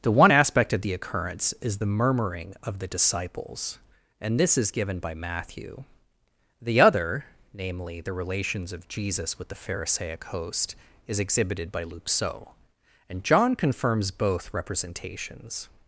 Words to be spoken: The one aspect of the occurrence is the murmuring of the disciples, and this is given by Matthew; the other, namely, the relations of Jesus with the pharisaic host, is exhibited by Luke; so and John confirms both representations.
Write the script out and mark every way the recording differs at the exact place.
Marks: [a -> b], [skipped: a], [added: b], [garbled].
The one aspect of the occurrence is the murmuring of the disciples, and this is given by Matthew; the other, namely, the relations of Jesus with the pharisaic host, is exhibited by Luke; so and John confirms both representations.